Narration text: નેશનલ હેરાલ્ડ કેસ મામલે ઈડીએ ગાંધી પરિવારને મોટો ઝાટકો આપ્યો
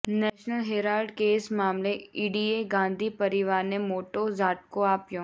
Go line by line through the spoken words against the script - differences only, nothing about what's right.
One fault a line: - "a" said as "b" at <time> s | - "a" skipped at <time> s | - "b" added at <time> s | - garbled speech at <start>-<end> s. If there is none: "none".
none